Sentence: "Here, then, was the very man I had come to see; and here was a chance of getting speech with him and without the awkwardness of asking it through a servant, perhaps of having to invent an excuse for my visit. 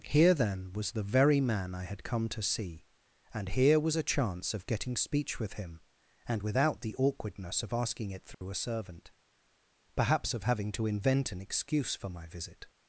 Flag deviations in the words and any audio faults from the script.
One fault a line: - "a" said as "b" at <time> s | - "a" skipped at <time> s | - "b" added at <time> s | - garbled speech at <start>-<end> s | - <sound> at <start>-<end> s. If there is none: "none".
- dropout at 8.3-8.4 s